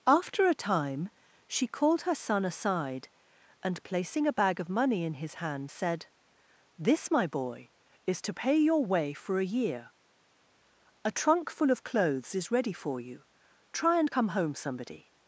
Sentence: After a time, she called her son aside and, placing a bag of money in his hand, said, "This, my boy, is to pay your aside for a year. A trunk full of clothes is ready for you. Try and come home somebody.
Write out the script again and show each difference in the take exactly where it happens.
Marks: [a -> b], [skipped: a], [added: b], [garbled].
After a time, she called her son aside and, placing a bag of money in his hand, said, "This, my boy, is to pay your [aside -> way] for a year. A trunk full of clothes is ready for you. Try and come home somebody.